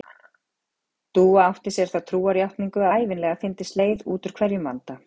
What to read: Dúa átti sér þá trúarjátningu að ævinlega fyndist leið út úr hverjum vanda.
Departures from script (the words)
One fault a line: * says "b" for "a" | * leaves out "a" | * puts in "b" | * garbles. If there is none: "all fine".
* leaves out "að"